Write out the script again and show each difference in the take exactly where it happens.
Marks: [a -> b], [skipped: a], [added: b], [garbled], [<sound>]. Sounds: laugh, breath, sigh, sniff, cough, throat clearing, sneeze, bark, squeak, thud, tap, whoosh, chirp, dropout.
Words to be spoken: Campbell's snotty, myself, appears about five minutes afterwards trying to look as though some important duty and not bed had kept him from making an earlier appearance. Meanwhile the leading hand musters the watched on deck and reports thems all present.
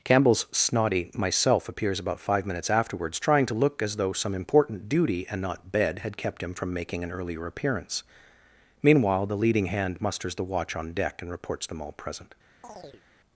Campbell's snotty, myself, appears about five minutes afterwards trying to look as though some important duty and not bed had kept him from making an earlier appearance. Meanwhile the leading hand musters the [watched -> watch] on deck and reports [thems -> them] all present. [chirp]